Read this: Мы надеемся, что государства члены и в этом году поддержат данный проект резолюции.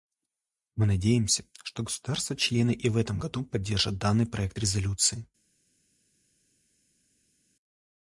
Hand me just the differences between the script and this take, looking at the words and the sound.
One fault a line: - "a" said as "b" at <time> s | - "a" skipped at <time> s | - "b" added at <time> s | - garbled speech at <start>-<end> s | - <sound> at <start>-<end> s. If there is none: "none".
none